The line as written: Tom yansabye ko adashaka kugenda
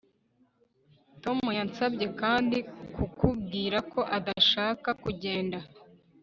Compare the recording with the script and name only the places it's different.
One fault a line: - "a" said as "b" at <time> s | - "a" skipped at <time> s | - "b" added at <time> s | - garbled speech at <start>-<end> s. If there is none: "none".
- "kandi kukubwira" added at 2.2 s